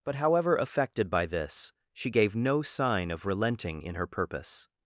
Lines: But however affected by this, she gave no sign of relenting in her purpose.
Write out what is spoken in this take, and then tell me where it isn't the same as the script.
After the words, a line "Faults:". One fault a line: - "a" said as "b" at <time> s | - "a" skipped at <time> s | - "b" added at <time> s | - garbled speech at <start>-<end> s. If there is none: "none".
But however affected by this, she gave no sign of relenting in her purpose.
Faults:
none